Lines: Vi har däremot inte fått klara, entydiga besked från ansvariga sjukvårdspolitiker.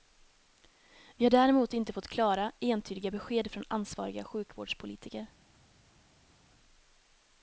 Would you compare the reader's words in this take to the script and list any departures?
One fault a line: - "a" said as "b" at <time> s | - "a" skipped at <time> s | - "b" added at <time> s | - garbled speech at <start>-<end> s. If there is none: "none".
none